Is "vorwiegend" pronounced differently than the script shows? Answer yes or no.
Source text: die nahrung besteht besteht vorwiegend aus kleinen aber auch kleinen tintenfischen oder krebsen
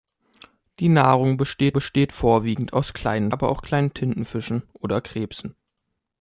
no